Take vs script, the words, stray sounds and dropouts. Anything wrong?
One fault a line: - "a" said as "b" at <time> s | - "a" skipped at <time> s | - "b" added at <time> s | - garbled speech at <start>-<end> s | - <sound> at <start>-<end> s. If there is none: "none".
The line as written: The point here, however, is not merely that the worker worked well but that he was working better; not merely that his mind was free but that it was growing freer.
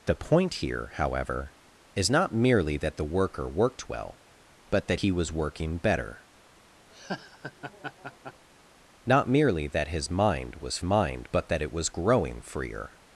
- laugh at 6.9-8.5 s
- "free" said as "mind" at 10.8 s